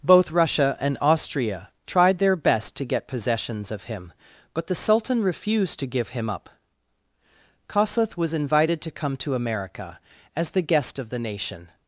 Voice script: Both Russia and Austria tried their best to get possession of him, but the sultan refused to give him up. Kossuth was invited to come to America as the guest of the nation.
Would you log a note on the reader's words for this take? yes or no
yes